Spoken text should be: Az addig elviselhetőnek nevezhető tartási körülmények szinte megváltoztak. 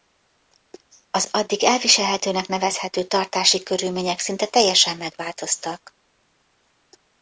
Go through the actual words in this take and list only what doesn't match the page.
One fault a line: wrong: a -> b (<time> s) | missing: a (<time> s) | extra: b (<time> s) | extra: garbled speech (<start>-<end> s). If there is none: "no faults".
extra: teljesen (4.5 s)